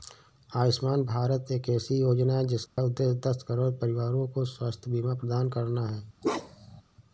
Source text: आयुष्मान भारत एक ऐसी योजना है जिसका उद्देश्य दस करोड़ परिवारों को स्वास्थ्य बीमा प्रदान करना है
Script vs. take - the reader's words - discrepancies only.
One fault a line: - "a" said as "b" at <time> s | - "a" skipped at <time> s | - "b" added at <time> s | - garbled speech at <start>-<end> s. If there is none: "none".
none